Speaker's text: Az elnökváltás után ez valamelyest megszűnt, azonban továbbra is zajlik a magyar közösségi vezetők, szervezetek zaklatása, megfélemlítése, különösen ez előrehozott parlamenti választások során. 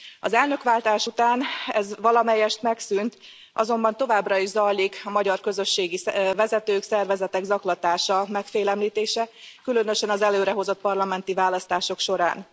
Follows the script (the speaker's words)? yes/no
no